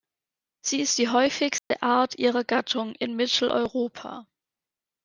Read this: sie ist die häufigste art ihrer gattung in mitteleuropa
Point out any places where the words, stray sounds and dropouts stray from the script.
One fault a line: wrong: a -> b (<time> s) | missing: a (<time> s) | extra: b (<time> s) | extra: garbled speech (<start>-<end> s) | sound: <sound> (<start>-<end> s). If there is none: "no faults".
sound: dropout (1.6-1.7 s)